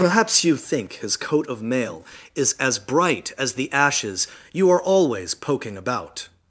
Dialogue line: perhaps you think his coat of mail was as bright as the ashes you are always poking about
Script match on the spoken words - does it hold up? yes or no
no